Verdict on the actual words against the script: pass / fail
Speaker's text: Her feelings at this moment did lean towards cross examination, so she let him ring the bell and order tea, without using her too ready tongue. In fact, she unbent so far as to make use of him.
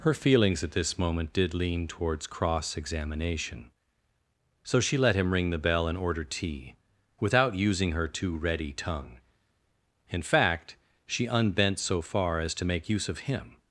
pass